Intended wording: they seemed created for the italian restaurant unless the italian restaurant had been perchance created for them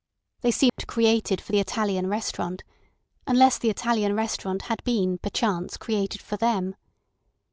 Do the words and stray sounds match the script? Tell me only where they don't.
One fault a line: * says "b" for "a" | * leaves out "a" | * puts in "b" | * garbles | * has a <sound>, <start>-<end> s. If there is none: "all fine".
* has a dropout, 0.7-0.8 s